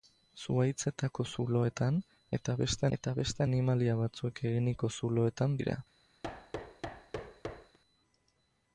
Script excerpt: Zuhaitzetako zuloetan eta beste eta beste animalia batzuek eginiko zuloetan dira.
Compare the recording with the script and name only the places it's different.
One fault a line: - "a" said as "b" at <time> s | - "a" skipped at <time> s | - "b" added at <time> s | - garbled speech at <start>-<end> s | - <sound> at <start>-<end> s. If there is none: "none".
- thud at 6.2-7.8 s